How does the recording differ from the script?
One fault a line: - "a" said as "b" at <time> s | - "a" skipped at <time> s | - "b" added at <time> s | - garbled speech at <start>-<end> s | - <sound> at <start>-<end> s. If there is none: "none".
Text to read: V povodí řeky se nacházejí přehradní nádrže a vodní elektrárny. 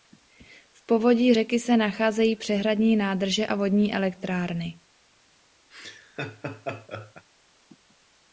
- laugh at 5.7-7.3 s